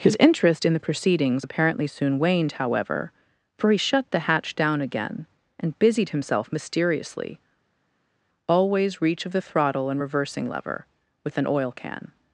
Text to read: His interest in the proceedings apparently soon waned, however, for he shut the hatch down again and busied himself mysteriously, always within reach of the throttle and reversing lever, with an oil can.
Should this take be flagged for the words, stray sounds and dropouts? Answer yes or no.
yes